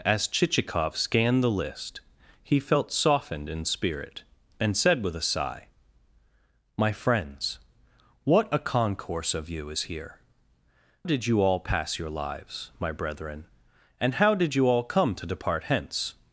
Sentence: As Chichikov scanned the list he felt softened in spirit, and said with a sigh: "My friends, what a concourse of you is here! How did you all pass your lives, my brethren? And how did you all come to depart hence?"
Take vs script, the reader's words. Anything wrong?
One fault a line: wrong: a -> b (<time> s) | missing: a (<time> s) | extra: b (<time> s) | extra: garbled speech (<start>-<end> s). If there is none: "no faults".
missing: How (10.2 s)